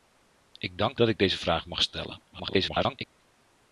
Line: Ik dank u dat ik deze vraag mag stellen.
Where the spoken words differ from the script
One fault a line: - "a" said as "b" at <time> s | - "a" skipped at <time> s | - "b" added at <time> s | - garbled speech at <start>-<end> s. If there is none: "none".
- "u" skipped at 1.0 s
- garbled speech at 2.3-3.0 s